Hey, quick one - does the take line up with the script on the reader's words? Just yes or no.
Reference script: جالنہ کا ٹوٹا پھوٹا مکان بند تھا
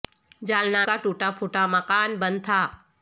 yes